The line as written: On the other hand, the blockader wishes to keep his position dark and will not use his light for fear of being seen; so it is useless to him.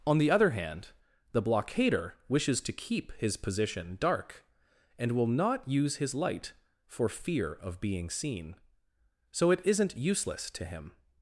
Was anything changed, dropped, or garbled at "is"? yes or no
yes